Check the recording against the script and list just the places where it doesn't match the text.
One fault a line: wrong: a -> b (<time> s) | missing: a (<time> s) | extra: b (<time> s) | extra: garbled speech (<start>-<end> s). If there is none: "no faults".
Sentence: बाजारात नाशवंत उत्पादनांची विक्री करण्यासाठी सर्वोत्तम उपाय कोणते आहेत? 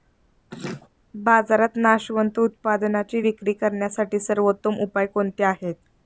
no faults